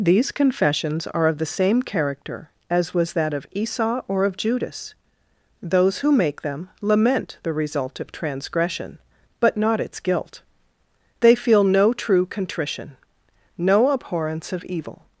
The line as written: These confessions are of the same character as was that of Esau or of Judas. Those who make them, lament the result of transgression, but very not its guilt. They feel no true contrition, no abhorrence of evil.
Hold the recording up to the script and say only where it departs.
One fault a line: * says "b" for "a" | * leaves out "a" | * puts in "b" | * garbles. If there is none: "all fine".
* leaves out "very"